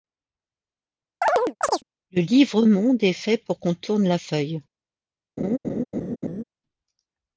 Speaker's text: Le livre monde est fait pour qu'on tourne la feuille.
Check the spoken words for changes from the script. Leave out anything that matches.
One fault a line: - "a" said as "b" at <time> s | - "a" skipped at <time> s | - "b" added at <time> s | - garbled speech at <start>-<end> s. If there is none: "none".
none